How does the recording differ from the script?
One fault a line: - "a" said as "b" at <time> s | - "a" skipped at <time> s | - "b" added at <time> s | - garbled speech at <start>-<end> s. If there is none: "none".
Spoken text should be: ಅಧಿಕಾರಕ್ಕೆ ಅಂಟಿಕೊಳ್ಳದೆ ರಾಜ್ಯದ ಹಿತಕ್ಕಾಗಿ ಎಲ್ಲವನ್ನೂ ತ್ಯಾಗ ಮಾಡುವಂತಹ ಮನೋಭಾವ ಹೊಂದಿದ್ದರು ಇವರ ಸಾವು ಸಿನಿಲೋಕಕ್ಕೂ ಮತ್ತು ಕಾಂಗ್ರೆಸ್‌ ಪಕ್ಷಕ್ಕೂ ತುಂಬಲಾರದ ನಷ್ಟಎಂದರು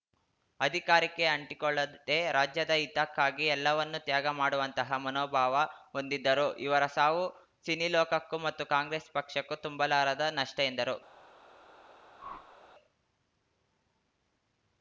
none